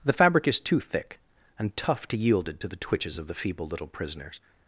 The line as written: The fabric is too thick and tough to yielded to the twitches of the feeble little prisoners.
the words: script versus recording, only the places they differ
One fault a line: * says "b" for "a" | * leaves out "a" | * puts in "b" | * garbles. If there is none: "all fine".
all fine